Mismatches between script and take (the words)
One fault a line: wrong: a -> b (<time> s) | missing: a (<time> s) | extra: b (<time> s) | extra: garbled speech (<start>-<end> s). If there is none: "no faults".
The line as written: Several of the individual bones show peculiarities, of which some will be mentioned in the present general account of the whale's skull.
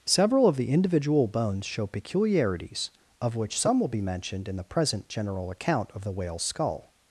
no faults